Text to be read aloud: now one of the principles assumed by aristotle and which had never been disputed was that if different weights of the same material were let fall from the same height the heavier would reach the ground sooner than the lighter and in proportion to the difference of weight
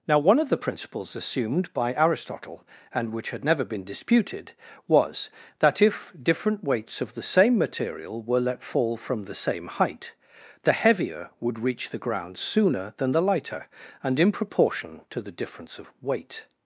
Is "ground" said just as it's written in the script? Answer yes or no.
yes